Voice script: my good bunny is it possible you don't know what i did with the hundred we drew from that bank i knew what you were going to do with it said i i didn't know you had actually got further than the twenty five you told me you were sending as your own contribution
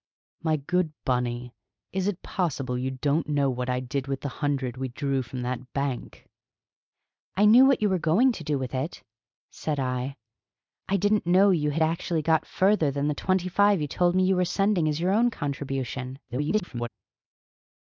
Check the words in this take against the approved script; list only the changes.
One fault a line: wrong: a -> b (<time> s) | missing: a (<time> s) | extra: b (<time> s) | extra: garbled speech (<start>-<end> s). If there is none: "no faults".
extra: garbled speech (16.3-16.9 s)